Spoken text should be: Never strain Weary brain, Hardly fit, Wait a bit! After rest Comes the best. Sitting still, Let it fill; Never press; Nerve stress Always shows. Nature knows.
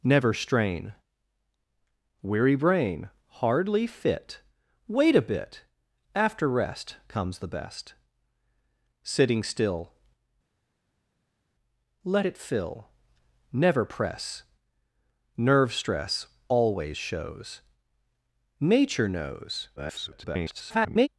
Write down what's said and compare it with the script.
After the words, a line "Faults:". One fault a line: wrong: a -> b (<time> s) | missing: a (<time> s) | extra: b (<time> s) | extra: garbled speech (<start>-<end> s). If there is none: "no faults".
Never strain Weary brain, Hardly fit, Wait a bit! After rest Comes the best. Sitting still, Let it fill; Never press; Nerve stress Always shows. Nature knows. [garbled]
Faults:
extra: garbled speech (19.8-21.1 s)